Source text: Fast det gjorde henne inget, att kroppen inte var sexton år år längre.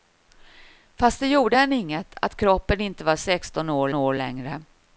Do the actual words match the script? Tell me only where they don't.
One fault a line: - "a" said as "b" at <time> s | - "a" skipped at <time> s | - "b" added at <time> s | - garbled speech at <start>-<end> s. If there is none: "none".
none